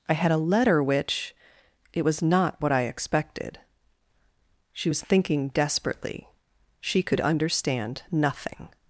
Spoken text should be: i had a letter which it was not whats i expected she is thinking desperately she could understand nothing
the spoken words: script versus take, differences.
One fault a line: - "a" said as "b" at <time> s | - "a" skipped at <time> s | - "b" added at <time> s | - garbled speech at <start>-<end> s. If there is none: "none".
- "whats" said as "what" at 2.6 s
- "is" said as "was" at 4.9 s